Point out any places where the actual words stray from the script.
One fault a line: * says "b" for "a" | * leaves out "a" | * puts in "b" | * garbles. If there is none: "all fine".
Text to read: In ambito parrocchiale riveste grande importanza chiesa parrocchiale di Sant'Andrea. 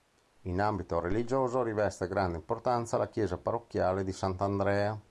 * says "religioso" for "parrocchiale"
* puts in "la"